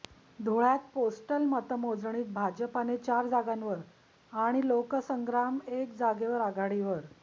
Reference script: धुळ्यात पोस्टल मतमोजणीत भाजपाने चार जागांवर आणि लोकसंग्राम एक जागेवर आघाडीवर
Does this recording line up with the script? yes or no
yes